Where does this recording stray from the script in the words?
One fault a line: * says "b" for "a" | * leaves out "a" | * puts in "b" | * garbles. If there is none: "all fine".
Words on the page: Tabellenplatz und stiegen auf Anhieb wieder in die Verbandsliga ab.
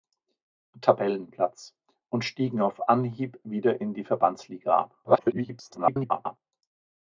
* garbles